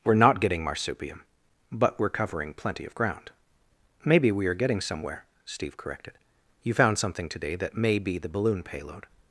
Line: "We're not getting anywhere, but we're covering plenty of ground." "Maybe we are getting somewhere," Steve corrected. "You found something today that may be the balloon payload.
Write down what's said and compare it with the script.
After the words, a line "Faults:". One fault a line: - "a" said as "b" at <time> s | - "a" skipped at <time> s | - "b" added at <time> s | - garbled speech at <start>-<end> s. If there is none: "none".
"We're not getting marsupium, but we're covering plenty of ground." "Maybe we are getting somewhere," Steve corrected. "You found something today that may be the balloon payload.
Faults:
- "anywhere" said as "marsupium" at 0.7 s